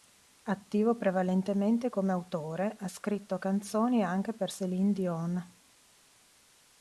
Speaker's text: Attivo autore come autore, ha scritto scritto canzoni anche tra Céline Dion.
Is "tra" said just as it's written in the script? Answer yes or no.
no